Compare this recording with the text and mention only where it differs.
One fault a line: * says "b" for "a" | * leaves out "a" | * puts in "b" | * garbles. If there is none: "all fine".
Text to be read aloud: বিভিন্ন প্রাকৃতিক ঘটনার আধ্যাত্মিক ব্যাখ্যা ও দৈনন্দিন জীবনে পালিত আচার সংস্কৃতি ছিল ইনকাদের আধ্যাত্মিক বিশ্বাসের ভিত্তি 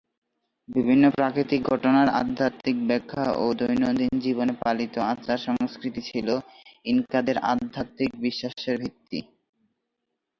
all fine